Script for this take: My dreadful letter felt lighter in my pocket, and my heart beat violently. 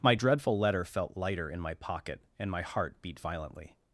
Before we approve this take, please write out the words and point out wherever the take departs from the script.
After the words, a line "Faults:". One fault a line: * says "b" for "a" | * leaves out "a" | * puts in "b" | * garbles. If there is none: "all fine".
My dreadful letter felt lighter in my pocket, and my heart beat violently.
Faults:
all fine